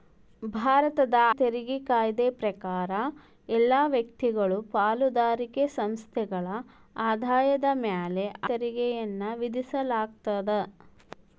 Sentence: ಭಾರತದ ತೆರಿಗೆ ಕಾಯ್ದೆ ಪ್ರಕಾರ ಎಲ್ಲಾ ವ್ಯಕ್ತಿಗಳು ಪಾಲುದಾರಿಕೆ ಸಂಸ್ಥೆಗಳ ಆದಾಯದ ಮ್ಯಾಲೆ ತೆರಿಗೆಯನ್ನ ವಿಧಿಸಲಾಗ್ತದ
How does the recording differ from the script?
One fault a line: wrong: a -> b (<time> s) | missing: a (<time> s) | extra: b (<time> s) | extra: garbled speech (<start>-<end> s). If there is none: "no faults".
no faults